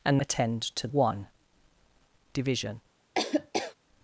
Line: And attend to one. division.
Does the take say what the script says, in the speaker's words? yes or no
yes